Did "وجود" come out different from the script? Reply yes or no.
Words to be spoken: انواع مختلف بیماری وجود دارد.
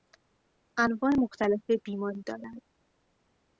yes